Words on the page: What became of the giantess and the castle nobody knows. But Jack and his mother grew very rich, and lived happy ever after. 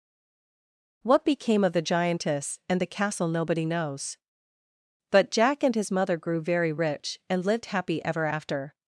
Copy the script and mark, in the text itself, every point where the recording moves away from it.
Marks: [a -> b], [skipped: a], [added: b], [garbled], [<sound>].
What became of the giantess and the castle nobody knows. But Jack and his mother grew very rich, and lived happy ever after.